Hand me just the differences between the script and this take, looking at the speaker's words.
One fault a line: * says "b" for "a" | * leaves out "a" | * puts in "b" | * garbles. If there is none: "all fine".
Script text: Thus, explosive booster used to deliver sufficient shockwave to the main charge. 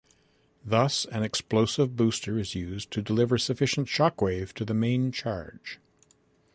* puts in "an"
* puts in "is"